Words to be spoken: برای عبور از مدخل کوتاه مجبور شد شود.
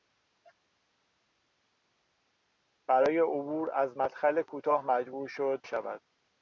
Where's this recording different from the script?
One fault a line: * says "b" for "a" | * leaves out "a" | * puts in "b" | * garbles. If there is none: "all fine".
all fine